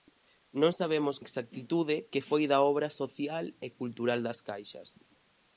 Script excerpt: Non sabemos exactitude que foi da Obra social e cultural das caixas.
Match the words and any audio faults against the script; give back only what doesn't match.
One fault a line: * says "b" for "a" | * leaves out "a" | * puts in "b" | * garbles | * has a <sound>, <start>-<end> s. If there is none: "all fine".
all fine